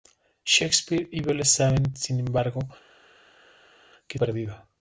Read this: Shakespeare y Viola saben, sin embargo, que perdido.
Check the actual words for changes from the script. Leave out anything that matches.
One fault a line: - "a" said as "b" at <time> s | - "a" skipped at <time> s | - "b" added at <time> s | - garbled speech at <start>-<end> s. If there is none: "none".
none